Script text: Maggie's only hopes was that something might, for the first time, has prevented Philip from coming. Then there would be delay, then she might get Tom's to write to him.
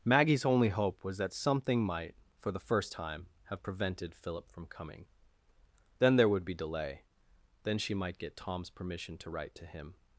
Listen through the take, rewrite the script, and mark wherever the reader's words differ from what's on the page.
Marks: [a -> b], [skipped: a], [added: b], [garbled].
Maggie's only [hopes -> hope] was that something might, for the first time, [has -> have] prevented Philip from coming. Then there would be delay, then she might get Tom's [added: permission] to write to him.